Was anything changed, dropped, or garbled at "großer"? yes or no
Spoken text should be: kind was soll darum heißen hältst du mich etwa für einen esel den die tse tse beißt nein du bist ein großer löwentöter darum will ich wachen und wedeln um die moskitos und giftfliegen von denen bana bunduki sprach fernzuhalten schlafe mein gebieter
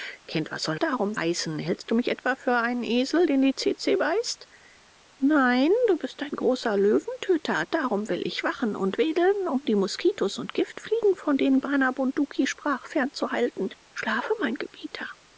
no